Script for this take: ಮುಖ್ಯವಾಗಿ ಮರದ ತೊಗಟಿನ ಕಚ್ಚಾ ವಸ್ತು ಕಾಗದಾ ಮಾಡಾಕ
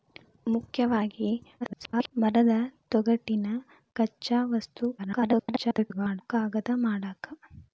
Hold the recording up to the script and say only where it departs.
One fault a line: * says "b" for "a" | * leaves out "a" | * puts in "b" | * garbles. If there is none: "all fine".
* garbles
* garbles